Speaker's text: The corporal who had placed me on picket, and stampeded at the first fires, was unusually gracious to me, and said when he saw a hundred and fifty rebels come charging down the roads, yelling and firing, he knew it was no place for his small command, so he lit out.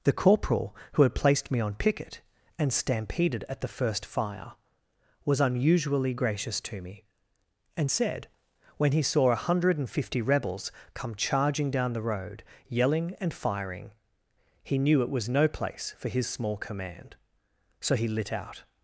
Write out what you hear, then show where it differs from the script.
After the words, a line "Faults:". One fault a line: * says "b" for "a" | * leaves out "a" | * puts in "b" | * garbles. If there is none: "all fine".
The corporal who had placed me on picket, and stampeded at the first fire, was unusually gracious to me, and said when he saw a hundred and fifty rebels come charging down the road, yelling and firing, he knew it was no place for his small command, so he lit out.
Faults:
* says "fire" for "fires"
* says "road" for "roads"